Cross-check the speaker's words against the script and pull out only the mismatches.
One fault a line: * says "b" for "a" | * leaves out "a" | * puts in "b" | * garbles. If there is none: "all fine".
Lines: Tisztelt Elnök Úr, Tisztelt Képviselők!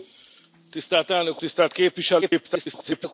* leaves out "Úr"
* garbles